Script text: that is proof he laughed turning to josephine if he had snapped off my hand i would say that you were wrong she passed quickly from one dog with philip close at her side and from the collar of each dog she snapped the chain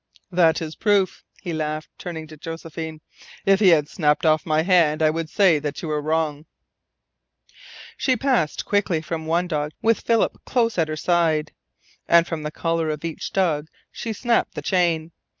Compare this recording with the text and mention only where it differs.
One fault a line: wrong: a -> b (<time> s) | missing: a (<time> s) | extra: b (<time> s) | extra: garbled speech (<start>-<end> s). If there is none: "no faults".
no faults